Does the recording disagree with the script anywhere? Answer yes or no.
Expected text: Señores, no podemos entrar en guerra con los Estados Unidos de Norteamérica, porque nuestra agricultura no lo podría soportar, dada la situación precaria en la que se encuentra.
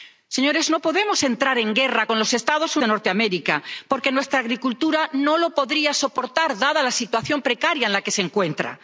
yes